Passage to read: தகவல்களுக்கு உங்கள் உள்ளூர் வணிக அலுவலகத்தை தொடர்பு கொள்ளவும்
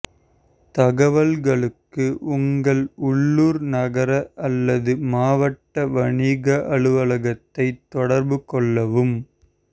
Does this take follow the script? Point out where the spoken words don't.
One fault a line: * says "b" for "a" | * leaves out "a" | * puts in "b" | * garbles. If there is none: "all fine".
* puts in "நகர அல்லது மாவட்ட"